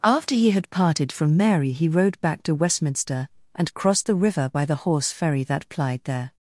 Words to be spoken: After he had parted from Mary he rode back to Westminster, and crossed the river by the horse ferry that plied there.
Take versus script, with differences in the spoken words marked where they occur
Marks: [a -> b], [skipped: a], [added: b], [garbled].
After he had parted from Mary he rode back to Westminster, and crossed the river by the horse ferry that plied there.